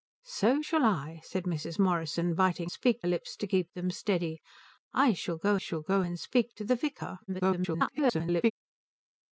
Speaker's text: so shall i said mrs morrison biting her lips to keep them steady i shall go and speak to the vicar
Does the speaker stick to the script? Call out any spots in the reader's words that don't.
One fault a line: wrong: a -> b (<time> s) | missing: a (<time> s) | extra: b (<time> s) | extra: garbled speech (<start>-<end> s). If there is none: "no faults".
wrong: her -> speak (2.7 s)
extra: shall go (5.5 s)
extra: garbled speech (7.3-8.5 s)